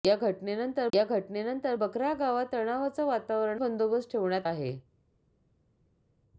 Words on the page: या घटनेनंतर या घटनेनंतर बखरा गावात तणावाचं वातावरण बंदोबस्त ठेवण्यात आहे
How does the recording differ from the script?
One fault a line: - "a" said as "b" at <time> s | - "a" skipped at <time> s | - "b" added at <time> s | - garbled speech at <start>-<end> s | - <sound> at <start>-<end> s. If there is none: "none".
none